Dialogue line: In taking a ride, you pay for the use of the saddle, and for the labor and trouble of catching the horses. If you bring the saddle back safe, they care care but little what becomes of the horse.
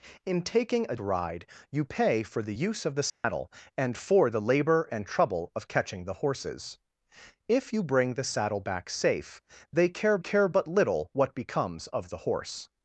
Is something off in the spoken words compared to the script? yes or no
no